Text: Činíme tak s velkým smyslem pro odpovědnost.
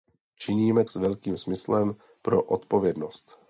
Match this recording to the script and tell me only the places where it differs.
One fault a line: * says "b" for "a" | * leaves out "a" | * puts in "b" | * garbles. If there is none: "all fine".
* leaves out "tak"